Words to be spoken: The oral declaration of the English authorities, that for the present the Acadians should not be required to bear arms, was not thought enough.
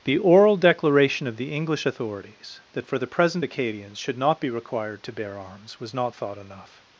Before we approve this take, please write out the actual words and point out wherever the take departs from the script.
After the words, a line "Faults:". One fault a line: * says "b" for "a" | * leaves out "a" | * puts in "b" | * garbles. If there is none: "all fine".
The oral declaration of the English authorities, that for the present Acadians should not be required to bear arms, was not thought enough.
Faults:
* leaves out "the"